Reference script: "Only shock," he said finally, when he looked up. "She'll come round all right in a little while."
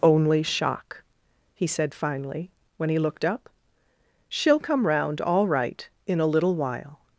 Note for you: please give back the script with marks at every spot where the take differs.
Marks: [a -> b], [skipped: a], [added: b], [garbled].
"Only shock," he said finally, when he looked up. "She'll come round all right in a little while."